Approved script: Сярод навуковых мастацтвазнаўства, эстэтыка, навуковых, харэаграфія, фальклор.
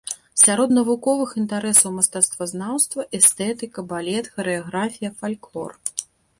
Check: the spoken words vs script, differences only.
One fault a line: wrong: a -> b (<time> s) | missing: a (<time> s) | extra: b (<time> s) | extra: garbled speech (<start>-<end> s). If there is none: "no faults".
extra: інтарэсаў (1.4 s)
wrong: навуковых -> балет (3.9 s)